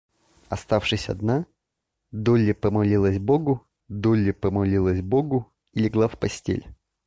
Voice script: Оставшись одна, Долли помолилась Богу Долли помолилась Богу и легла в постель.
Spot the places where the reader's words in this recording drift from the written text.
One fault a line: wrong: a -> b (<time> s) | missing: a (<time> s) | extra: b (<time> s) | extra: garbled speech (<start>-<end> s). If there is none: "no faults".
no faults